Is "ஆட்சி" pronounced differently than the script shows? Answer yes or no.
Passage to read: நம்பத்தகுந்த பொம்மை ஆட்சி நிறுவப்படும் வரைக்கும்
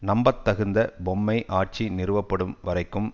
no